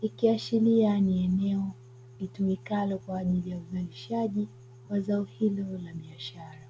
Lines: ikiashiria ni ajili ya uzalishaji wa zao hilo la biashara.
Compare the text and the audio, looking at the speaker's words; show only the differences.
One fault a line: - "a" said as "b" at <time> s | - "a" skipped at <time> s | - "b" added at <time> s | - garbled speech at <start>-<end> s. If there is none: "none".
- "eneo litumikalo kwa" added at 1.2 s